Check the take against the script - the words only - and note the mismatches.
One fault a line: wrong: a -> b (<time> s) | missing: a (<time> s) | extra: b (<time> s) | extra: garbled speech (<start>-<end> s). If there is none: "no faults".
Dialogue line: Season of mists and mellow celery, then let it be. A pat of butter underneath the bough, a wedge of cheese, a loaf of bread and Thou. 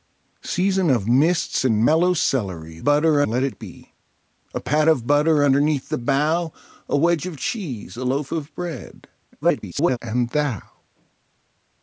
wrong: then -> butter (2.8 s)
extra: garbled speech (9.4-10.0 s)